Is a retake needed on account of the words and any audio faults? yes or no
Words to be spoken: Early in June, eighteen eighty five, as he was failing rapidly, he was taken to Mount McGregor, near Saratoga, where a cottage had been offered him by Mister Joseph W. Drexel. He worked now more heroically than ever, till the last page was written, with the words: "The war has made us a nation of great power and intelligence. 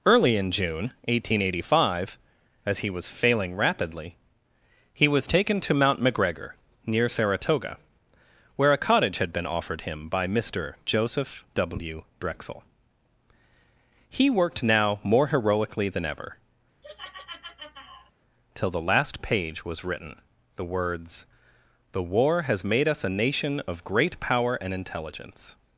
yes